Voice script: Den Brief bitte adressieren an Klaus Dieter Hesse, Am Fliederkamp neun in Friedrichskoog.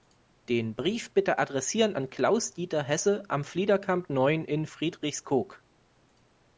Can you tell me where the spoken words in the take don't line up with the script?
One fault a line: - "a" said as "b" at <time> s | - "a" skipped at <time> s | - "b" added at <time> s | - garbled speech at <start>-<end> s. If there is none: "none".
none